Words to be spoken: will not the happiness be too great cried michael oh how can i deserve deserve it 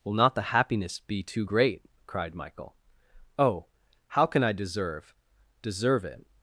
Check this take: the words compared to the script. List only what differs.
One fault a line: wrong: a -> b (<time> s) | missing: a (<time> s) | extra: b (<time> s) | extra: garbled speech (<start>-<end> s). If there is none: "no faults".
no faults